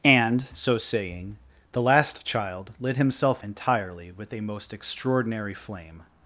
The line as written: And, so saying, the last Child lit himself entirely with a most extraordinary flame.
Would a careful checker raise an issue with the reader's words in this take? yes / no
no